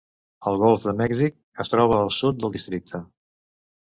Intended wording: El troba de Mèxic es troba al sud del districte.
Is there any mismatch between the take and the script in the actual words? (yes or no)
yes